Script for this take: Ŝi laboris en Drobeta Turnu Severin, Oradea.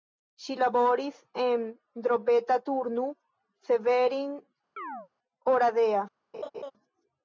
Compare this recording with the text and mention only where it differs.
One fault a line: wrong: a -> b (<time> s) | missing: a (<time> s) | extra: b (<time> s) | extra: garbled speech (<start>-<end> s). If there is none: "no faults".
no faults